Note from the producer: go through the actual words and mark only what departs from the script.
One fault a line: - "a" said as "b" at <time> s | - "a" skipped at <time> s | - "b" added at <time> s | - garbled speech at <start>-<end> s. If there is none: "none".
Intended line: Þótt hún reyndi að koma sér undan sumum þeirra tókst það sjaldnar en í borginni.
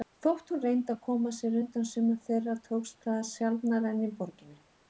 none